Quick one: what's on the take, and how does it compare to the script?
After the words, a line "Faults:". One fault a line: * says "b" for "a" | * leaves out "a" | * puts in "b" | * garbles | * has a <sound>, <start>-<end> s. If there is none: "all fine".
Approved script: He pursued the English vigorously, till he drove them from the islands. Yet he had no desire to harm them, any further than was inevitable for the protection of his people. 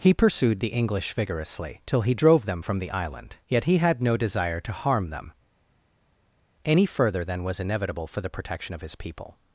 He pursued the English vigorously, till he drove them from the island. Yet he had no desire to harm them, any further than was inevitable for the protection of his people.
Faults:
* says "island" for "islands"